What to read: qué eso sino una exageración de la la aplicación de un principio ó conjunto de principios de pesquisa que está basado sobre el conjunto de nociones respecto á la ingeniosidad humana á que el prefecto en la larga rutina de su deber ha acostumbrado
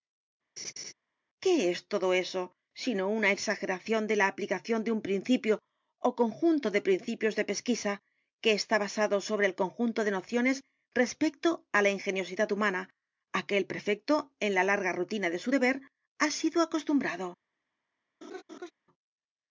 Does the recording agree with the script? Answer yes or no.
no